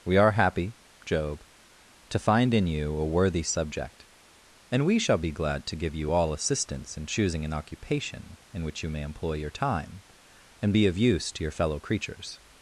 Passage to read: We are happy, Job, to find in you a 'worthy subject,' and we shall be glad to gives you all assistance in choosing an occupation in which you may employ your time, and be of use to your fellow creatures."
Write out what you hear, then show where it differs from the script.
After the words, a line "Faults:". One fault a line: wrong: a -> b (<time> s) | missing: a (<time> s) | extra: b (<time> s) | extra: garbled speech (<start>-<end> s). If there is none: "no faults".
We are happy, Job, to find in you a 'worthy subject,' and we shall be glad to give you all assistance in choosing an occupation in which you may employ your time, and be of use to your fellow creatures."
Faults:
wrong: gives -> give (5.8 s)